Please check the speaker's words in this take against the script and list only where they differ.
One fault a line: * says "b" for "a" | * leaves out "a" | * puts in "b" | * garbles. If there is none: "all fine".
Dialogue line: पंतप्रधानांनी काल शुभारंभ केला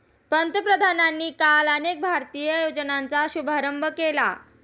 * puts in "अनेक भारतीय योजनांचा"